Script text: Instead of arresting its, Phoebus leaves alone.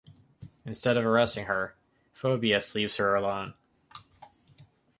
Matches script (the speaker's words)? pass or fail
fail